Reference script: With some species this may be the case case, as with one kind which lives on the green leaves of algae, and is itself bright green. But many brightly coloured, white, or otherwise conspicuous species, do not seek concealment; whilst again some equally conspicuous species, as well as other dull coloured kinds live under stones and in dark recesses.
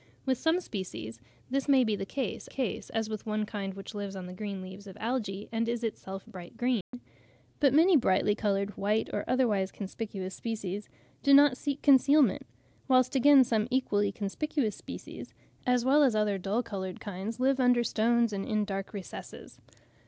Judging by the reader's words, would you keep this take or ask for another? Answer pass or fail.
pass